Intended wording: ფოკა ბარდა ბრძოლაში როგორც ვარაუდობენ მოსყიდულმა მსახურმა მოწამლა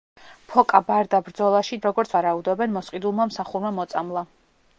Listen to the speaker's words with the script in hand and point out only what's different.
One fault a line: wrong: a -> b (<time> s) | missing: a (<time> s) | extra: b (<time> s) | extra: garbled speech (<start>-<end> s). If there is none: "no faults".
no faults